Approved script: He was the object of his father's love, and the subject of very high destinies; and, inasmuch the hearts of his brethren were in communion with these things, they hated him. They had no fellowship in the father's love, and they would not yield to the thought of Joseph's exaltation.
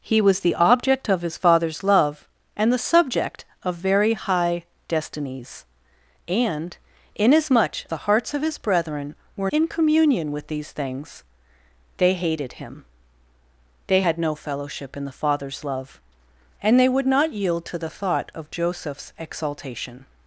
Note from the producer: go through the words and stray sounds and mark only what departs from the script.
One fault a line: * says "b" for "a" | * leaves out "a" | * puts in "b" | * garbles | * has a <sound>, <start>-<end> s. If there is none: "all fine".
all fine